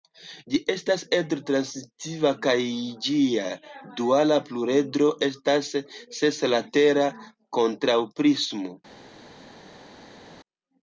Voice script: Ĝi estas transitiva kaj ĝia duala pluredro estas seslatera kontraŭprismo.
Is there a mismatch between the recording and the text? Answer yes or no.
yes